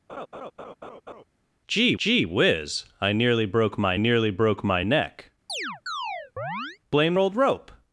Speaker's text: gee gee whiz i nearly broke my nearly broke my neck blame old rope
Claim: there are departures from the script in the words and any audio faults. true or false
true